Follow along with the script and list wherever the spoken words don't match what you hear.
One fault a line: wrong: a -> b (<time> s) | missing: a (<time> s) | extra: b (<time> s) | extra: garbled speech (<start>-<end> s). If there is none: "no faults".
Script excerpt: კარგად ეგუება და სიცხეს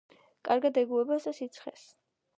no faults